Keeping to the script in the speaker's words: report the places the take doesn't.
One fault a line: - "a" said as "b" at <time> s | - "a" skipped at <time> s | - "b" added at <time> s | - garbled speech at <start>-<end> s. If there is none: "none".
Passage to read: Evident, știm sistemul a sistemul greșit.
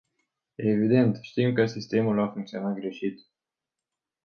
- "că" added at 1.5 s
- "sistemul" said as "funcționat" at 2.3 s